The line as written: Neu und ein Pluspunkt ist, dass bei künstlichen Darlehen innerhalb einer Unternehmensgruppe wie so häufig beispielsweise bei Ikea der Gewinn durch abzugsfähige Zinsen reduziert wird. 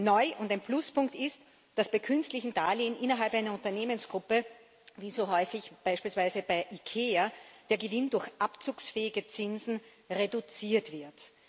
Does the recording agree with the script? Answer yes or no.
yes